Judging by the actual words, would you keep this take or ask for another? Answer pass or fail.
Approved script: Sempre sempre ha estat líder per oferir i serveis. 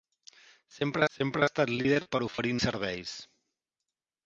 pass